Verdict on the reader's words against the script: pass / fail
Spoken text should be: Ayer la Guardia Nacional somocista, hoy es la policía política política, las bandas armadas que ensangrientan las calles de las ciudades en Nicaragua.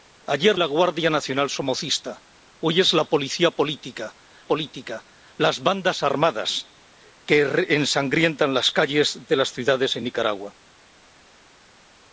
pass